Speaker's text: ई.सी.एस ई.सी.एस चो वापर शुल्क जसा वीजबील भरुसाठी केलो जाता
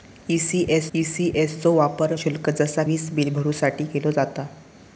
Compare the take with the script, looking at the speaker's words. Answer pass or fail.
pass